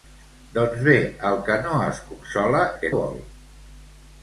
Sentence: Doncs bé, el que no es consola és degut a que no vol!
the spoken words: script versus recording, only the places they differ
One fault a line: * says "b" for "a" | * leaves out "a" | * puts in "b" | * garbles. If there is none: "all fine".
* leaves out "és degut"
* leaves out "no"